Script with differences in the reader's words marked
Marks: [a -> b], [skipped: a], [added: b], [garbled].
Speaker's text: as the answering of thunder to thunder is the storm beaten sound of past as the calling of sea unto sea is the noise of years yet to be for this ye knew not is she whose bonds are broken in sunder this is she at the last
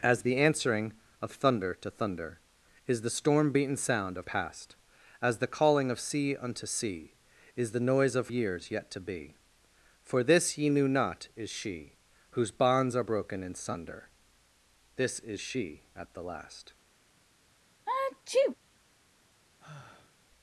as the answering of thunder to thunder is the storm beaten sound of past as the calling of sea unto sea is the noise of years yet to be for this ye knew not is she whose bonds are broken in sunder this is she at the last